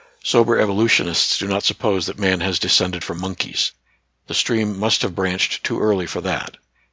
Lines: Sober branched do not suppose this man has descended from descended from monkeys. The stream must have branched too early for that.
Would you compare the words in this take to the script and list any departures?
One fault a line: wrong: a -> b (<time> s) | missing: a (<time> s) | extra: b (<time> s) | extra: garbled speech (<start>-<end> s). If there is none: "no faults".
wrong: branched -> evolutionists (0.6 s)
wrong: this -> that (2.1 s)
missing: descended from (3.2 s)